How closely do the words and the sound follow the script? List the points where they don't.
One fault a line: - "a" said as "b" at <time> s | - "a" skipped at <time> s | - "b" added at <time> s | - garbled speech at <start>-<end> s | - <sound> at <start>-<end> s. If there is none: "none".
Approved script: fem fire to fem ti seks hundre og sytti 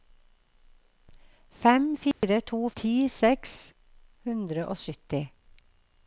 - dropout at 2.1-2.2 s
- "fem" skipped at 2.6 s